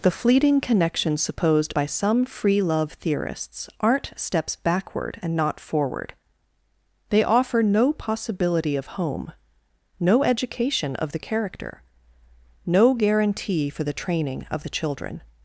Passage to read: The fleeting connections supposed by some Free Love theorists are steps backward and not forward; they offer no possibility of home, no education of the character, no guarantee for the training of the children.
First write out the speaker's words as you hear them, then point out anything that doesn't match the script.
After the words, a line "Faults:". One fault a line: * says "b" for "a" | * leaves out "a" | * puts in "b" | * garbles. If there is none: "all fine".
The fleeting connections supposed by some Free Love theorists aren't steps backward and not forward; they offer no possibility of home, no education of the character, no guarantee for the training of the children.
Faults:
* says "aren't" for "are"